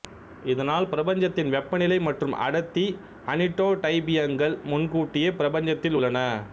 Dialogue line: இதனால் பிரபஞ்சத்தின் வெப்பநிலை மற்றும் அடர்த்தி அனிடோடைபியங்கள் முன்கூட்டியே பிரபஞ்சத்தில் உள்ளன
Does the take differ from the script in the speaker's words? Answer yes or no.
no